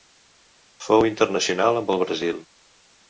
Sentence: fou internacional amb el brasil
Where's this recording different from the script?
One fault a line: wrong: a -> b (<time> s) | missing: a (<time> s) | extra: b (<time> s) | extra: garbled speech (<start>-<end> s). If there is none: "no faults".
no faults